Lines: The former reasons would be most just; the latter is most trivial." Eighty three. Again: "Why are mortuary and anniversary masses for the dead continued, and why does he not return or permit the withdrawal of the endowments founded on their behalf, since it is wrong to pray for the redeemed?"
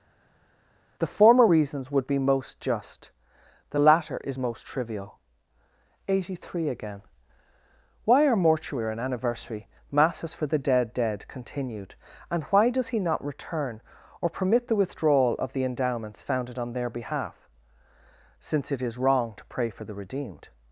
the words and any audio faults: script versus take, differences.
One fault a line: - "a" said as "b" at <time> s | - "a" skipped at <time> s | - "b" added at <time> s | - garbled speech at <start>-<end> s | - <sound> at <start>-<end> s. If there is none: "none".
- "dead" added at 10.9 s